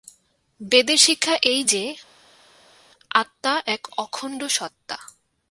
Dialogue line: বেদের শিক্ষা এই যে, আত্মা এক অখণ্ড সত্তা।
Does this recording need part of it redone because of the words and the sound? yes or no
no